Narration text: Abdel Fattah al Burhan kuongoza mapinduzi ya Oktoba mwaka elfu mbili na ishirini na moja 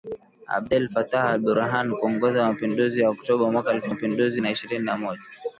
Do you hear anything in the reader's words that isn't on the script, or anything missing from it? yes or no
yes